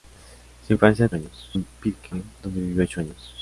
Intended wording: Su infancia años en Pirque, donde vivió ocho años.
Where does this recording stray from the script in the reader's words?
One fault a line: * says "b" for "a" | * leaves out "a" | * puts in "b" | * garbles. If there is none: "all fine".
all fine